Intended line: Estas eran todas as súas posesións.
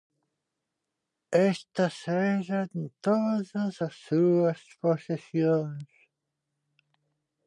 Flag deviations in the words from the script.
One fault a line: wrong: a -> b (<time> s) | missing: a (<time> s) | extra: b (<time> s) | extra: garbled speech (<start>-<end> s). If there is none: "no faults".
no faults